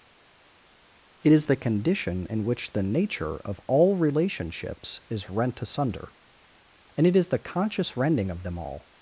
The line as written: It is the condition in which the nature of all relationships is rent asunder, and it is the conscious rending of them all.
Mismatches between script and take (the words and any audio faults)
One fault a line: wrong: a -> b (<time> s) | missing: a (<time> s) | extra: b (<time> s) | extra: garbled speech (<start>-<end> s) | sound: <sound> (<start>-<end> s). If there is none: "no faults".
no faults